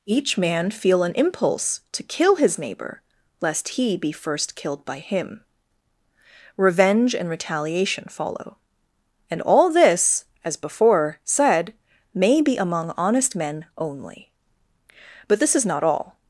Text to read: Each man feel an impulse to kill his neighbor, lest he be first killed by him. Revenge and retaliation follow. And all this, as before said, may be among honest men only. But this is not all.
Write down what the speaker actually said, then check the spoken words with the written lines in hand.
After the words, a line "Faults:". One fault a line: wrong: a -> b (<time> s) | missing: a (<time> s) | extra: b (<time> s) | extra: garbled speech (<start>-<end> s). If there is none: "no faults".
Each man feel an impulse to kill his neighbor, lest he be first killed by him. Revenge and retaliation follow. And all this, as before said, may be among honest men only. But this is not all.
Faults:
no faults